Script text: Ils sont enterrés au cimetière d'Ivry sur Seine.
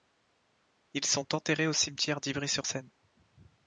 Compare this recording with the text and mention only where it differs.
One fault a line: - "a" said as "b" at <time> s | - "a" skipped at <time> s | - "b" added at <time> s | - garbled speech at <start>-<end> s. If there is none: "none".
none